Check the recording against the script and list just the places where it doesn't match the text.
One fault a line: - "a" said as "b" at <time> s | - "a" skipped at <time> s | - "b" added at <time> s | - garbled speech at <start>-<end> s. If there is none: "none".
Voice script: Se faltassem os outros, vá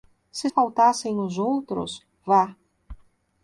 none